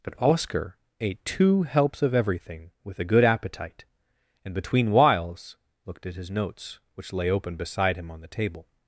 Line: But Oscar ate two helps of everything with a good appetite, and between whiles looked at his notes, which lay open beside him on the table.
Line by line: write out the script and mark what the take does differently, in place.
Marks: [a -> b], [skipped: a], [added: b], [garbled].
But Oscar ate two helps of everything with a good appetite, and between whiles looked at his notes, which lay open beside him on the table.